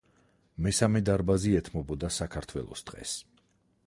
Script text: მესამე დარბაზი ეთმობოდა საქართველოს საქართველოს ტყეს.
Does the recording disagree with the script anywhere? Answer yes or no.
yes